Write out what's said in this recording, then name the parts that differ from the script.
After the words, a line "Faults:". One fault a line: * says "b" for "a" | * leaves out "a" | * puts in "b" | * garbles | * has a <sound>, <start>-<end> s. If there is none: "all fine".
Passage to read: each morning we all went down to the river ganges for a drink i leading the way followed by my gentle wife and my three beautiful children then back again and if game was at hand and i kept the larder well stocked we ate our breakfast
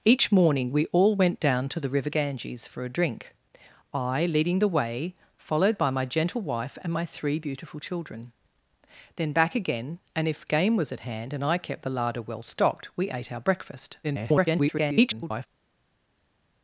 each morning we all went down to the river ganges for a drink i leading the way followed by my gentle wife and my three beautiful children then back again and if game was at hand and i kept the larder well stocked we ate our breakfast [garbled]
Faults:
* garbles